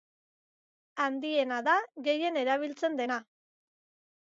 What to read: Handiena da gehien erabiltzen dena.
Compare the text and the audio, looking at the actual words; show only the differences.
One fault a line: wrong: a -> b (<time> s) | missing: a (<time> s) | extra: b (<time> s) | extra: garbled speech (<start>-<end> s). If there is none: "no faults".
no faults